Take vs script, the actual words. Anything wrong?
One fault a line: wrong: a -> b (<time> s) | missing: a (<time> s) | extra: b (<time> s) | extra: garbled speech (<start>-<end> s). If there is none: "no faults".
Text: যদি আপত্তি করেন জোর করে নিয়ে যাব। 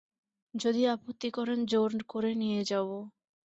no faults